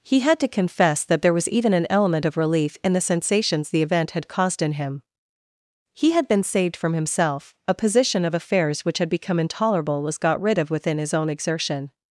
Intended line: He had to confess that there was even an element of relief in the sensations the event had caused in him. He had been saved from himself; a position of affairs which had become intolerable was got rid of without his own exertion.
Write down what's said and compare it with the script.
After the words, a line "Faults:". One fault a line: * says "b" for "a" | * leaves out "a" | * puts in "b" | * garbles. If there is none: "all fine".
He had to confess that there was even an element of relief in the sensations the event had caused in him. He had been saved from himself; a position of affairs which had become intolerable was got rid of within his own exertion.
Faults:
* says "within" for "without"